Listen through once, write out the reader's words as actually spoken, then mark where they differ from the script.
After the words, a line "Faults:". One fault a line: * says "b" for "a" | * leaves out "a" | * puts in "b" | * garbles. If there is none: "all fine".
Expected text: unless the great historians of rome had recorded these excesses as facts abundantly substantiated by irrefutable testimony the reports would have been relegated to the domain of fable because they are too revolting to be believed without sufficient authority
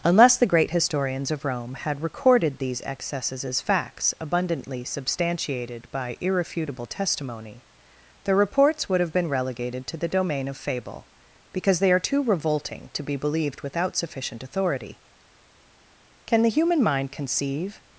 unless the great historians of rome had recorded these excesses as facts abundantly substantiated by irrefutable testimony the reports would have been relegated to the domain of fable because they are too revolting to be believed without sufficient authority can the human mind conceive
Faults:
* puts in "can the human mind conceive"